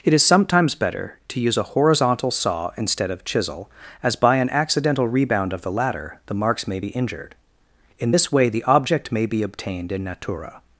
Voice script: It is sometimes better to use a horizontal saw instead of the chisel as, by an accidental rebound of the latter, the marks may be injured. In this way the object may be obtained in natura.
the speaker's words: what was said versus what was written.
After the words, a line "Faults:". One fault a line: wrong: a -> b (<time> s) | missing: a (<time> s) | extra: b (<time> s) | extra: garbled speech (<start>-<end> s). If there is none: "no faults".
It is sometimes better to use a horizontal saw instead of chisel as, by an accidental rebound of the latter, the marks may be injured. In this way the object may be obtained in natura.
Faults:
missing: the (3.2 s)